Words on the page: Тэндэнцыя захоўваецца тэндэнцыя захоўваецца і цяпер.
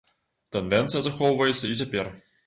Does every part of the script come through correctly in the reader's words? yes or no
no